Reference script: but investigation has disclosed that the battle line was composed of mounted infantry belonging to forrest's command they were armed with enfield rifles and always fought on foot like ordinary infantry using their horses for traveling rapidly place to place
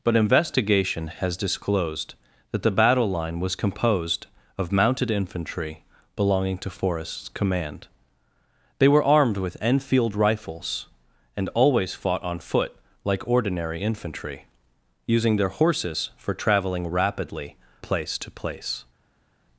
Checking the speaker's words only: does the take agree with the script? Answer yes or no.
yes